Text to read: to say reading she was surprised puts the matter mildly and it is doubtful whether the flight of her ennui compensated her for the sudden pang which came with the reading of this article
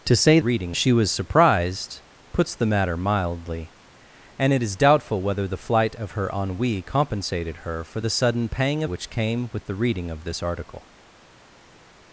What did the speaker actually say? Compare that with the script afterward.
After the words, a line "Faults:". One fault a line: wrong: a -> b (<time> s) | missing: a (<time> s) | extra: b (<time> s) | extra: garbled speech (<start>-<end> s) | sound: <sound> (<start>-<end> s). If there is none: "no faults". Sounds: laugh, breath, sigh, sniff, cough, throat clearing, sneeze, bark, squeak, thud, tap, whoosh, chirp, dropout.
to say reading she was surprised puts the matter mildly and it is doubtful whether the flight of her ennui compensated her for the sudden pang which came with the reading of this article
Faults:
no faults